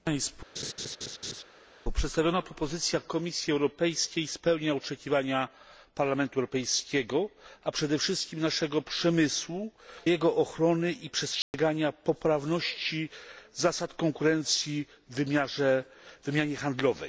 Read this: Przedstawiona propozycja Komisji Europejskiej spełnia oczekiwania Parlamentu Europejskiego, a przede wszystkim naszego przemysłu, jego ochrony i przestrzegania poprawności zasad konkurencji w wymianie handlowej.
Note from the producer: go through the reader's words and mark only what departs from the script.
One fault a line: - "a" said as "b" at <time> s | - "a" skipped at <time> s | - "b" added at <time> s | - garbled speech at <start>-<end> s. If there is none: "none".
none